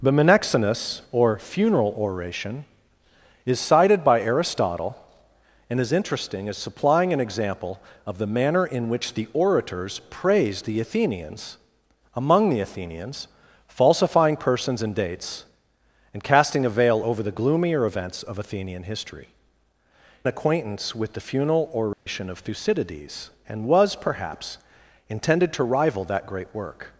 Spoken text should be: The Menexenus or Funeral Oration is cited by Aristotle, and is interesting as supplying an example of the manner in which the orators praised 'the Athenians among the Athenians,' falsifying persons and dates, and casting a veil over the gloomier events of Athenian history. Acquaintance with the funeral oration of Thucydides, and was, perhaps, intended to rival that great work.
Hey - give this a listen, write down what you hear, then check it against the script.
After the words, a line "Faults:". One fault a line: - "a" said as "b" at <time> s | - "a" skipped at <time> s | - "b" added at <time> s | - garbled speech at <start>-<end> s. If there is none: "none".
The Menexenus or Funeral Oration is cited by Aristotle, and is interesting as supplying an example of the manner in which the orators praised 'the Athenians among the Athenians,' falsifying persons and dates, and casting a veil over the gloomier events of Athenian history. Acquaintance with the funeral oration of Thucydides, and was, perhaps, intended to rival that great work.
Faults:
none